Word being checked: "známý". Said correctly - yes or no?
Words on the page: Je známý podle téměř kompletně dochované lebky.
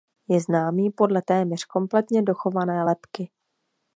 yes